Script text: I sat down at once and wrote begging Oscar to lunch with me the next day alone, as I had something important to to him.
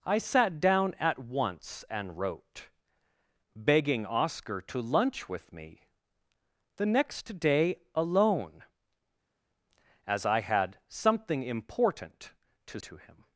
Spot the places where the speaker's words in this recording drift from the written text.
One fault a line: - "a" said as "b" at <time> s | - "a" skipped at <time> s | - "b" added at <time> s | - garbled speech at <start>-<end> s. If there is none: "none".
none